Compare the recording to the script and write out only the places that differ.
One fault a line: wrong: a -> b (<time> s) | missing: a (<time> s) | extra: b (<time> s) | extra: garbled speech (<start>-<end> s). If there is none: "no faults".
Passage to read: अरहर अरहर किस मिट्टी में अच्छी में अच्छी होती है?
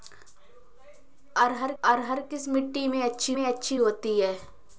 no faults